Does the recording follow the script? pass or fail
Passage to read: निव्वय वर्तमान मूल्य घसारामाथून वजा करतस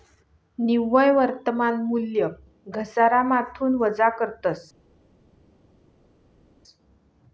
pass